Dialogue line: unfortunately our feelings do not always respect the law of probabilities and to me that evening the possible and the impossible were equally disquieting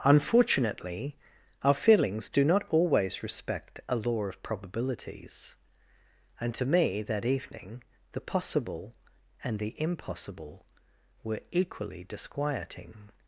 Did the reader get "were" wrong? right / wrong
right